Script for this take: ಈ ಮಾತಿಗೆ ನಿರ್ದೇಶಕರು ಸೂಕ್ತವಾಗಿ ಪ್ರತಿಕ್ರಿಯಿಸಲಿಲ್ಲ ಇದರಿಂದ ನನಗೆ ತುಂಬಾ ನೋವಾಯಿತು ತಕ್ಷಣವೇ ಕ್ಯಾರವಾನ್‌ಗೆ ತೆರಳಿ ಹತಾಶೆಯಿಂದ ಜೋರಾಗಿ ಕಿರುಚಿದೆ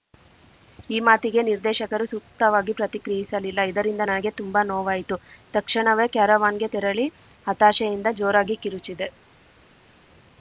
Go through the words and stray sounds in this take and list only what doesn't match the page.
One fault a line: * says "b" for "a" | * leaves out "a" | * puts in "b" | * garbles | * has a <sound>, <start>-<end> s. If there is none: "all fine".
all fine